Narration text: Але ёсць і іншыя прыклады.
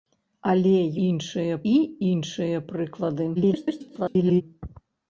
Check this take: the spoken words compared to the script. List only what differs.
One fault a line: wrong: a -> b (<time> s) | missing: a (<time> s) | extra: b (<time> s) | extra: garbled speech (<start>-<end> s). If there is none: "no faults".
wrong: ёсць -> іншыя (1.1 s)
extra: garbled speech (3.4-4.4 s)